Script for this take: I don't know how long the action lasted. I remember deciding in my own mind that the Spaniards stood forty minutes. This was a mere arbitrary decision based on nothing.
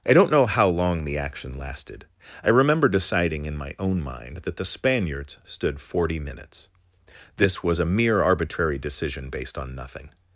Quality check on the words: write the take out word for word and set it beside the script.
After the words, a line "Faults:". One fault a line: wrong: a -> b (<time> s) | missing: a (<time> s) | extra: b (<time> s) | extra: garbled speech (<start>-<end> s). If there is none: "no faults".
I don't know how long the action lasted. I remember deciding in my own mind that the Spaniards stood forty minutes. This was a mere arbitrary decision based on nothing.
Faults:
no faults